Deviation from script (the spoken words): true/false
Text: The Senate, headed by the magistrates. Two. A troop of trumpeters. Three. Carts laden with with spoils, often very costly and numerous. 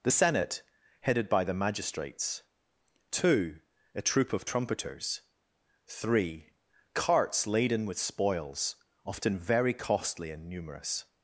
true